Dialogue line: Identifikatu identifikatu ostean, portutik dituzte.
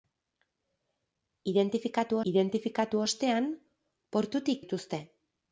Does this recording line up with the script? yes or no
yes